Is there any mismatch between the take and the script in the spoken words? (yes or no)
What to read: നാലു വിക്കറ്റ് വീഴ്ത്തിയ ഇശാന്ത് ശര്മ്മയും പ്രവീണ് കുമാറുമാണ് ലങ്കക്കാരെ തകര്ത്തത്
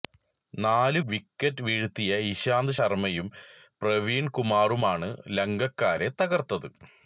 no